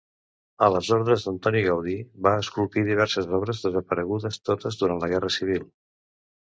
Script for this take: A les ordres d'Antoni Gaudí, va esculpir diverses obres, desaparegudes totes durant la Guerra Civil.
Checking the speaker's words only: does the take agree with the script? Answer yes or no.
yes